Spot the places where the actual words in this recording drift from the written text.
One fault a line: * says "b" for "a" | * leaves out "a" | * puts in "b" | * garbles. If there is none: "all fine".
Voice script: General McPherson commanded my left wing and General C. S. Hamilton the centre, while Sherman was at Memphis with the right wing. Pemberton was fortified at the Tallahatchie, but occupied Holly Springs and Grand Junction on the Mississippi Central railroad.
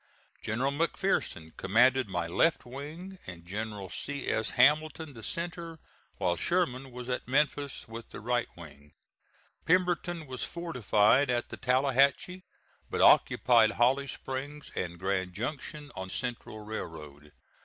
* leaves out "the Mississippi"